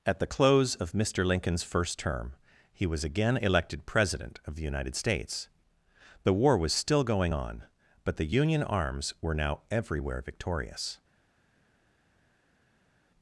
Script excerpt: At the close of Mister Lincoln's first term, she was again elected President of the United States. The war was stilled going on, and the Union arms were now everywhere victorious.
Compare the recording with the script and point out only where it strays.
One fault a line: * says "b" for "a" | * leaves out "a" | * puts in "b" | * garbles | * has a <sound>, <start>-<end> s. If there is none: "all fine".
* says "he" for "she"
* says "still" for "stilled"
* says "but" for "and"